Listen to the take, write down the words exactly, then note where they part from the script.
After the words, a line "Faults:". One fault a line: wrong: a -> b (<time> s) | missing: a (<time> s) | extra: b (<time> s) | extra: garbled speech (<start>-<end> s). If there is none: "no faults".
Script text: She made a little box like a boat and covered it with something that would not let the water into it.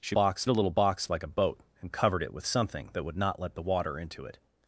She box a little box like a boat and covered it with something that would not let the water into it.
Faults:
wrong: made -> box (0.1 s)